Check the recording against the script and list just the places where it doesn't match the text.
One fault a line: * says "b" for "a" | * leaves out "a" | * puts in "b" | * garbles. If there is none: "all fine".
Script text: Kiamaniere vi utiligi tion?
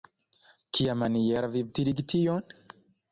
all fine